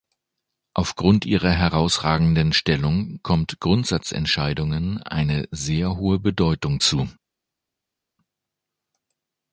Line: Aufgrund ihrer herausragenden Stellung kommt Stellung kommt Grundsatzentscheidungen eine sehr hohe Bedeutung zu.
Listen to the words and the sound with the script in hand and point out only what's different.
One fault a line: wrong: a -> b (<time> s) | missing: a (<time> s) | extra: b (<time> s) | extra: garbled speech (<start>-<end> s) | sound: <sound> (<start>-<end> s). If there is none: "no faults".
missing: Stellung kommt (3.6 s)